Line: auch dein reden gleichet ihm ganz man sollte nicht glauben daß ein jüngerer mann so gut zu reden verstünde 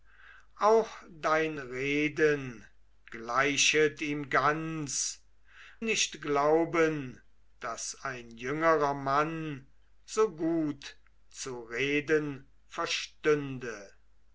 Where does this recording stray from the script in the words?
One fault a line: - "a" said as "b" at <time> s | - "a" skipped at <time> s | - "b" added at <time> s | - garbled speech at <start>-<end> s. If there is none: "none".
- "man sollte" skipped at 5.3 s